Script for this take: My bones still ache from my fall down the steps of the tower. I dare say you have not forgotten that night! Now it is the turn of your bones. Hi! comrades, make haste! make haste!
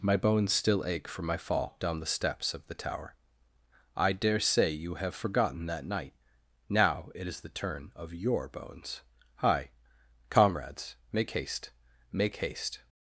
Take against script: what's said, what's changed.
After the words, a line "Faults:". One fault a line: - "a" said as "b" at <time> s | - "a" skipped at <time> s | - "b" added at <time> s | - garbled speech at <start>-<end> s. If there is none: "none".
My bones still ache from my fall down the steps of the tower. I dare say you have forgotten that night! Now it is the turn of your bones. Hi! comrades, make haste! make haste!
Faults:
- "not" skipped at 5.1 s